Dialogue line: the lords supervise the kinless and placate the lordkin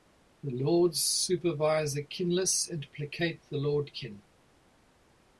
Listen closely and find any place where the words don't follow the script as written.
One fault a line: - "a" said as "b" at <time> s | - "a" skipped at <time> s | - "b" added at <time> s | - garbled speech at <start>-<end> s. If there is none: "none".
none